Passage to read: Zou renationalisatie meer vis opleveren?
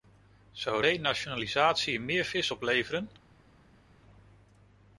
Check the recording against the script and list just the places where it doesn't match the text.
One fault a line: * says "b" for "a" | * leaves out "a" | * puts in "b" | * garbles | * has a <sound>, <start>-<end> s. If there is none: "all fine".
all fine